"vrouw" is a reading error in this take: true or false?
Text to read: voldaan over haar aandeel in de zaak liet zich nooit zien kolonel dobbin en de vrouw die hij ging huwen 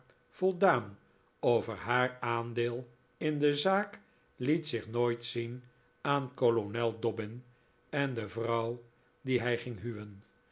false